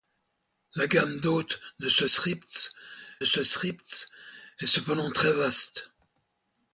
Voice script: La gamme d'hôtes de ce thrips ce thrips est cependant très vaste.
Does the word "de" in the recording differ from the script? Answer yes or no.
no